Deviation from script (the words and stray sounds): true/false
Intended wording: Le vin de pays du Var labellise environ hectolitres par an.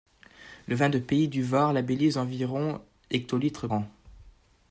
true